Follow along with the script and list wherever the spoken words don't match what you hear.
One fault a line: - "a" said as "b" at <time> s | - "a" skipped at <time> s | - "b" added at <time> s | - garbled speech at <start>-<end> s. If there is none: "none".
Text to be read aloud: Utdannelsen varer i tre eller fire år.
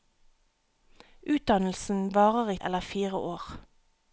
- "tre" skipped at 2.6 s